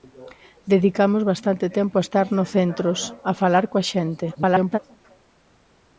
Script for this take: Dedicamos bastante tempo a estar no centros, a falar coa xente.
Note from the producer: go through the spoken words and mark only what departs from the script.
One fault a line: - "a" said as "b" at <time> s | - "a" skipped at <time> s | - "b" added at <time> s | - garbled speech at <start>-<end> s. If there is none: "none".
- garbled speech at 4.3-4.8 s